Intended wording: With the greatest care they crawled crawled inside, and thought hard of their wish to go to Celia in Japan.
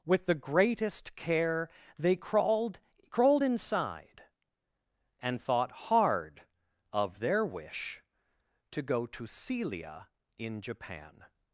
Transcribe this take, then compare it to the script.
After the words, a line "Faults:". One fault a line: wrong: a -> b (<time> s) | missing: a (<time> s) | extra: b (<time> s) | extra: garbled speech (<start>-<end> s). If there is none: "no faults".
With the greatest care they crawled crawled inside, and thought hard of their wish to go to Celia in Japan.
Faults:
no faults